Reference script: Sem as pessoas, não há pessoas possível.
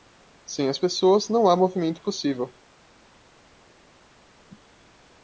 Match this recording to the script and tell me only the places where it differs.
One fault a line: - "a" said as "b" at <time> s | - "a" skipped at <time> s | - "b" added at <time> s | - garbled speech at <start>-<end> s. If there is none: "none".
- "pessoas" said as "movimento" at 1.6 s